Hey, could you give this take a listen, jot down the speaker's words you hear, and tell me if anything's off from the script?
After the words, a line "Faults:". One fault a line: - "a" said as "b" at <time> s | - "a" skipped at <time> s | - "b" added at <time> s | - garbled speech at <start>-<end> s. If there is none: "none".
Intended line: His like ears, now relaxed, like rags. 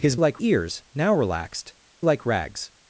His like ears, now relaxed, like rags.
Faults:
none